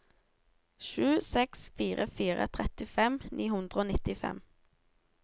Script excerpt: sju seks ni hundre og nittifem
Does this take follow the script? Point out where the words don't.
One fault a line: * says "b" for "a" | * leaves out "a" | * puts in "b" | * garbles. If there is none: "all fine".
* puts in "fire fire trettifem"